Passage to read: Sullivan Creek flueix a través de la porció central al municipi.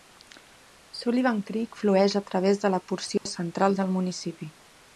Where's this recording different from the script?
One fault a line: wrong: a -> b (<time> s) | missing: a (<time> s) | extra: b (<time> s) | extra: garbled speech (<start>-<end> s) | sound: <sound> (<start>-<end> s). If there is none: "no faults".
sound: dropout (3.2-3.3 s)
wrong: al -> del (3.8 s)